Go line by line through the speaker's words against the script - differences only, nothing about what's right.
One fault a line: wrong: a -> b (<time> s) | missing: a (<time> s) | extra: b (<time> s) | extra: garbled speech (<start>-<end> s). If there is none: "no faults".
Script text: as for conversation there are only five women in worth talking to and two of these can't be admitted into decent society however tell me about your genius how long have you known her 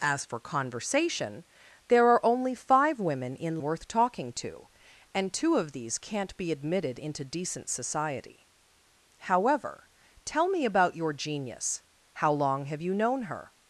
no faults